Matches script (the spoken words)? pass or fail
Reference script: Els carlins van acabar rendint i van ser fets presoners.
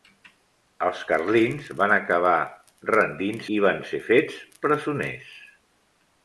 pass